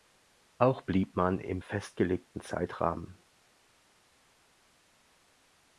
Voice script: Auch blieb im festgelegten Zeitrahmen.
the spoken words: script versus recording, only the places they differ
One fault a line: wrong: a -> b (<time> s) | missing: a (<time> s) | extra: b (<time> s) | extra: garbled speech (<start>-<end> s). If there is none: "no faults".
extra: man (1.1 s)